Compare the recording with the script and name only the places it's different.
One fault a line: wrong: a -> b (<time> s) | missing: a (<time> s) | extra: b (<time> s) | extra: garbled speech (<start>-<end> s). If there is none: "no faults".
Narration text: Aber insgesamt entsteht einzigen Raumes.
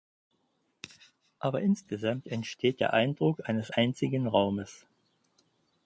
extra: der Eindruck eines (2.8 s)